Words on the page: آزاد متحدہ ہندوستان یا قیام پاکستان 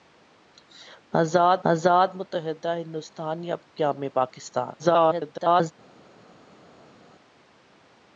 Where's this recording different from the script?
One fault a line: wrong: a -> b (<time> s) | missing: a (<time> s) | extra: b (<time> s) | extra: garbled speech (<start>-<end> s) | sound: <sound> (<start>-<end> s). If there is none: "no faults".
extra: آزاد (1.7 s)
extra: garbled speech (4.8-5.7 s)